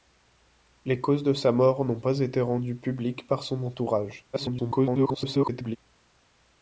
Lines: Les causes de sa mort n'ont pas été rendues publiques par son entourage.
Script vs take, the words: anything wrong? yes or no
yes